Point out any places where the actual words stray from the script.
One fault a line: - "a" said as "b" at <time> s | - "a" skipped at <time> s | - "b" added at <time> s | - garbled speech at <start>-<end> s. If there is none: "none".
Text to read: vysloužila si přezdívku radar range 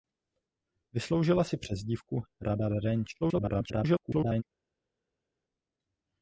- garbled speech at 3.2-4.4 s